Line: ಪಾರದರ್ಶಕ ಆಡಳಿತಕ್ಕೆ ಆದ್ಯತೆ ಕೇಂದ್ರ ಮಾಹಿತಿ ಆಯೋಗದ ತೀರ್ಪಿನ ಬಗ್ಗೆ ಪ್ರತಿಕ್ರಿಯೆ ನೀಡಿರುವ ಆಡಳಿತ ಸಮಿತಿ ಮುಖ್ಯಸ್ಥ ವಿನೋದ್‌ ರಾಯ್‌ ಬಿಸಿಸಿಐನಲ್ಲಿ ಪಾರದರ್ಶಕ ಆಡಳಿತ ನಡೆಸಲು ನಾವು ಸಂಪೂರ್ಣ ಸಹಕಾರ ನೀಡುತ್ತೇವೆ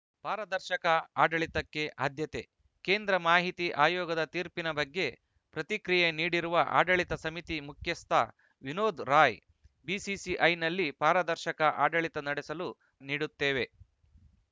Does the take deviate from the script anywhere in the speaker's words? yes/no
yes